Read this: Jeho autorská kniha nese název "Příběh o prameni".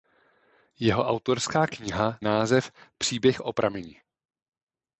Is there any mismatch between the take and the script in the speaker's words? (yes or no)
yes